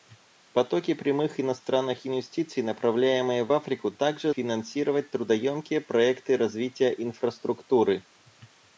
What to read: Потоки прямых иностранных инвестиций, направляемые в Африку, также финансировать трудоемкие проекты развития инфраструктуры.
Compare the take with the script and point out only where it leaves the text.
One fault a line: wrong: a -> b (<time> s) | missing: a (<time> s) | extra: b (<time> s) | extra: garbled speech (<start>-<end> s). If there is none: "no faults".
no faults